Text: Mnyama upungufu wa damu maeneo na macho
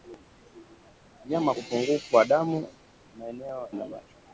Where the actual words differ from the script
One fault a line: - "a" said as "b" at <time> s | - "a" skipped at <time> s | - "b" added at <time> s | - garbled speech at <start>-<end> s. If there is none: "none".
none